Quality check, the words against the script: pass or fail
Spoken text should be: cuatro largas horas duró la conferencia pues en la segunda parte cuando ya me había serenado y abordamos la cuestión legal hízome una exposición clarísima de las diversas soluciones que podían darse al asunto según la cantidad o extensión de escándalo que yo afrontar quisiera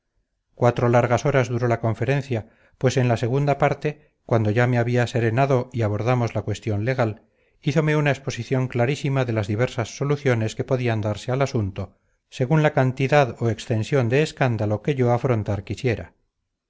pass